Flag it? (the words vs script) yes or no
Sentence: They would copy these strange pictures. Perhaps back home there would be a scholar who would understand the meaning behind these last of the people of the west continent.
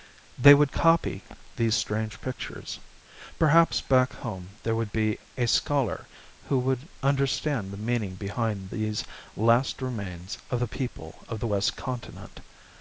yes